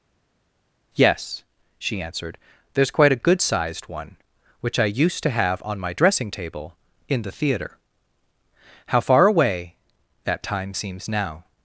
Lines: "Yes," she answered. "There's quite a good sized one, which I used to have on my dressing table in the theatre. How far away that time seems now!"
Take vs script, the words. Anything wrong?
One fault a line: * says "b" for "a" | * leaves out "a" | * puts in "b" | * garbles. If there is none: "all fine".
all fine